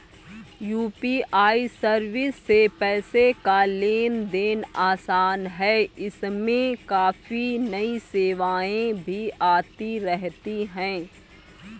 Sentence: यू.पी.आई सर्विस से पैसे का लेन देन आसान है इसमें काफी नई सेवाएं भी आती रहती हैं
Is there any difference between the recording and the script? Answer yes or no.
no